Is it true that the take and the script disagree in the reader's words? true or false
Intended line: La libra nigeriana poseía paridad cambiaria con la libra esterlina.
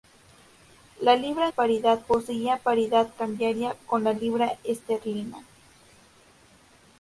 true